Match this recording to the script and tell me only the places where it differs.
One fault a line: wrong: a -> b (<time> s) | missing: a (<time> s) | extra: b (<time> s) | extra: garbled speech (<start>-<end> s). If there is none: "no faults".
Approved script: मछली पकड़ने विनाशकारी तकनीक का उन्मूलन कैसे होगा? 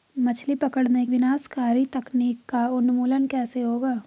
no faults